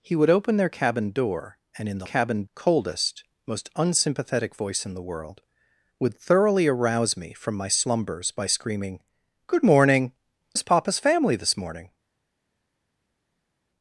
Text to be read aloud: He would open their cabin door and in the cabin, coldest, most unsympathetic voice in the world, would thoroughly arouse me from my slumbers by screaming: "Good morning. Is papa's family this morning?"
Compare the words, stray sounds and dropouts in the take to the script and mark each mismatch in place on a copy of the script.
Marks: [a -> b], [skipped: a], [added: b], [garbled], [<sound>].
He would open their cabin door and in the cabin, coldest, most unsympathetic voice in the world, would thoroughly arouse me from my slumbers by screaming: "Good morning. Is papa's family this morning?"